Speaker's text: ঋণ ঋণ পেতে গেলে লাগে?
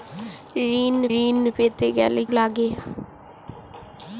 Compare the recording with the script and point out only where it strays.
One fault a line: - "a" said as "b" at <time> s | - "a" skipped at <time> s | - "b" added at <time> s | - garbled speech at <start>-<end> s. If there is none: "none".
none